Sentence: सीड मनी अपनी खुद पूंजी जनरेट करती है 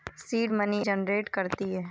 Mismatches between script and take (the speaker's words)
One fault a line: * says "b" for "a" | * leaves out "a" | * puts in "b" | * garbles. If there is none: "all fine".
* leaves out "अपनी खुद पूंजी"